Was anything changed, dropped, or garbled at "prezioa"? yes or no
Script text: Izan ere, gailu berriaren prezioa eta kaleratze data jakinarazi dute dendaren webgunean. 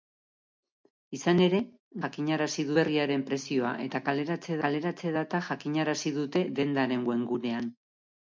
no